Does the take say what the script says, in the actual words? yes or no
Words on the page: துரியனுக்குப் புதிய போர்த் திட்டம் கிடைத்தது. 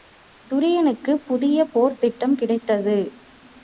yes